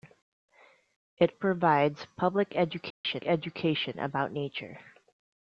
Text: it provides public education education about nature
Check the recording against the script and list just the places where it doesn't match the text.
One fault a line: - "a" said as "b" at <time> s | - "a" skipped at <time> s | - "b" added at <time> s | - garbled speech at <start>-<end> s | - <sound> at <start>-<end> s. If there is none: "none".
- dropout at 2.9-3.0 s